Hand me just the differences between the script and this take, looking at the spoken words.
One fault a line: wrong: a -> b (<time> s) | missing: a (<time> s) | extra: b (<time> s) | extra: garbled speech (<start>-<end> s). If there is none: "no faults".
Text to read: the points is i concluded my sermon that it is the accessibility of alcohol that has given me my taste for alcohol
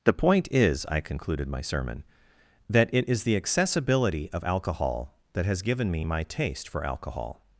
wrong: points -> point (0.1 s)